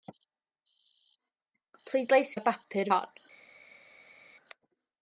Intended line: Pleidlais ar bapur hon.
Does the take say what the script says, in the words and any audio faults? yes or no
yes